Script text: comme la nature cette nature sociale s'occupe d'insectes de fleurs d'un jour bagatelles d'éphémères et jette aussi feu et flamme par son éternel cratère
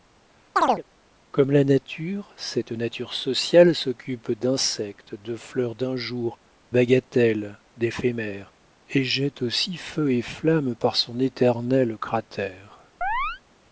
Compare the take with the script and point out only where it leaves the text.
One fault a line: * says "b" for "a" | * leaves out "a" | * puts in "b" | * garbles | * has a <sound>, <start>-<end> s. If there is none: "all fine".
* has a chirp, 0.6-0.8 s
* has a chirp, 13.0-13.4 s